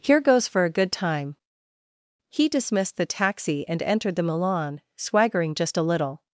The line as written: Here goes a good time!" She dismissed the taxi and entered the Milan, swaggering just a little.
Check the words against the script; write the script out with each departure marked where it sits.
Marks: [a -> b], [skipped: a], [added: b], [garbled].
Here goes [added: for] a good time!" [She -> He] dismissed the taxi and entered the Milan, swaggering just a little.